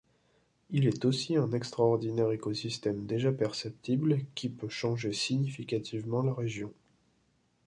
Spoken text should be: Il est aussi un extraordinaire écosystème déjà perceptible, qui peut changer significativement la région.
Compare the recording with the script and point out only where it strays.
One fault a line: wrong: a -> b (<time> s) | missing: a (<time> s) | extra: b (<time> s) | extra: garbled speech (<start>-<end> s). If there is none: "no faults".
no faults